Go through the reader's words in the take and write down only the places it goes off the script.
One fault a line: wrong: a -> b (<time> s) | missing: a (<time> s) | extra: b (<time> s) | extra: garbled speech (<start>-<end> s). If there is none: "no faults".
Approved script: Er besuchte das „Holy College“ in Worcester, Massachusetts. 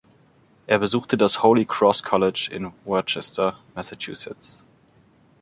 extra: Cross (1.6 s)